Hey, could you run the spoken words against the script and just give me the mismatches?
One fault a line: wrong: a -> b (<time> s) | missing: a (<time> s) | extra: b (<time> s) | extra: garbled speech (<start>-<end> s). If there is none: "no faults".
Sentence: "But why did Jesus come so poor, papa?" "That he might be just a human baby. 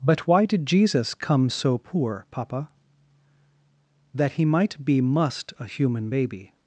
wrong: just -> must (5.0 s)